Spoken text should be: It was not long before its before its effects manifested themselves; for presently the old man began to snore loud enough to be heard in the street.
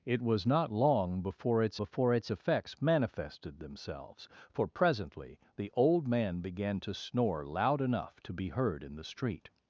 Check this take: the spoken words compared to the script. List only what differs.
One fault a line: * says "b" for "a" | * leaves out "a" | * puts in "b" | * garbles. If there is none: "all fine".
all fine